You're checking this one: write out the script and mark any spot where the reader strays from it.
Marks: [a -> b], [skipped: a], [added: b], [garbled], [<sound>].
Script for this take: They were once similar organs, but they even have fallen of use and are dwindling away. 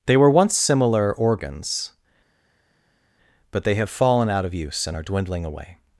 They were once similar organs, but they [skipped: even] have fallen [added: out] of use and are dwindling away.